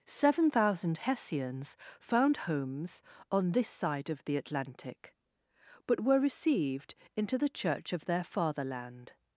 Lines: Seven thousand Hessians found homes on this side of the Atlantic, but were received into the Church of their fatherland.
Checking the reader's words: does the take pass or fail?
pass